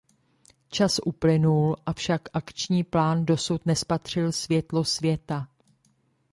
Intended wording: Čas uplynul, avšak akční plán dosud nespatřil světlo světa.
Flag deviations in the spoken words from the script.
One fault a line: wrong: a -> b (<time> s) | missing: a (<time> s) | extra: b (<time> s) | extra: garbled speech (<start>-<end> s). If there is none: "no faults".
no faults